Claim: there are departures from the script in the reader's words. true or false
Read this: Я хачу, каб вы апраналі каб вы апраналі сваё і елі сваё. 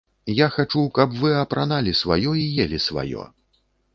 true